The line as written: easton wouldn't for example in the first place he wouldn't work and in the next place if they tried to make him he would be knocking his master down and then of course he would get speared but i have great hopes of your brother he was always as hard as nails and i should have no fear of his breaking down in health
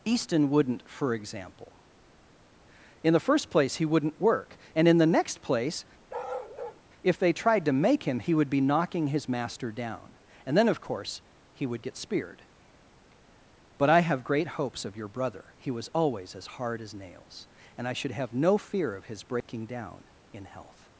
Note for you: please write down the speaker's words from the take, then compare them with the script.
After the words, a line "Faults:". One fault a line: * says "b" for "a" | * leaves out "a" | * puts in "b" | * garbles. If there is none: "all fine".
easton wouldn't for example in the first place he wouldn't work and in the next place if they tried to make him he would be knocking his master down and then of course he would get speared but i have great hopes of your brother he was always as hard as nails and i should have no fear of his breaking down in health
Faults:
all fine